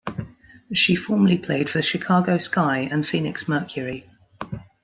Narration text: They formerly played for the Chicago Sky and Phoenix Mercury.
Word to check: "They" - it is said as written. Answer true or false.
false